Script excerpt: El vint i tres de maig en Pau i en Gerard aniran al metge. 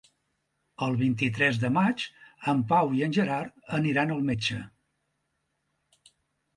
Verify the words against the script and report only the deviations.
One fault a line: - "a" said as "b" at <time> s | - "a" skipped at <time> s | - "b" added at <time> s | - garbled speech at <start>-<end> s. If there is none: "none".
none